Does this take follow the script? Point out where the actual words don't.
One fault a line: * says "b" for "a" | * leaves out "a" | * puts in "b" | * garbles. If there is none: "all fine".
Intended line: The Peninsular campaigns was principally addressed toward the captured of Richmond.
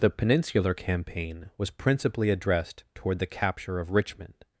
* says "campaign" for "campaigns"
* says "capture" for "captured"